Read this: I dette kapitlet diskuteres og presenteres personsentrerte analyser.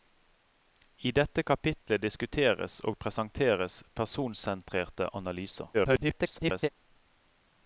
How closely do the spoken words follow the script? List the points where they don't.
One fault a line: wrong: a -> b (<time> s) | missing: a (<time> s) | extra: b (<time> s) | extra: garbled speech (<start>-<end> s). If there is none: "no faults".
extra: garbled speech (5.7-6.7 s)